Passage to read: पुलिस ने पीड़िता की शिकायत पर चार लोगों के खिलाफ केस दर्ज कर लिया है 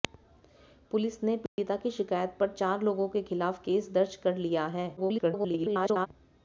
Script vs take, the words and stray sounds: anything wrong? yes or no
yes